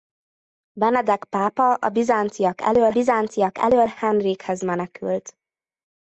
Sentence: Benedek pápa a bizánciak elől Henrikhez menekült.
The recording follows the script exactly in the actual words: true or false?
false